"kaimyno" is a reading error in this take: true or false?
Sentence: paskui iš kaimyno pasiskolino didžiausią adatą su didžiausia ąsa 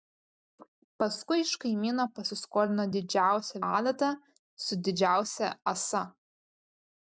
false